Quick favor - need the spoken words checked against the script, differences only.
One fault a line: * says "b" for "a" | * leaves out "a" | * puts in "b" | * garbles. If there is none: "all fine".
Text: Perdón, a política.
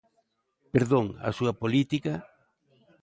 * puts in "súa"